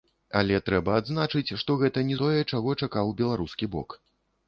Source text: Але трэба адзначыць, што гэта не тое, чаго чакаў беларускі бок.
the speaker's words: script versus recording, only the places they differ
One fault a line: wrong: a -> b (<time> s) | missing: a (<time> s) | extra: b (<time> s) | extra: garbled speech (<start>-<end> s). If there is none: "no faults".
no faults